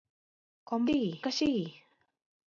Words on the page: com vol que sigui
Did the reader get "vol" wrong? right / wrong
wrong